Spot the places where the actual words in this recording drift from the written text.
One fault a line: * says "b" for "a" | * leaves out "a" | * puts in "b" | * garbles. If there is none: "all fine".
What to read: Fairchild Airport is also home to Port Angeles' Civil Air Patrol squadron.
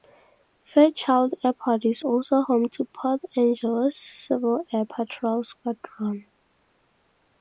all fine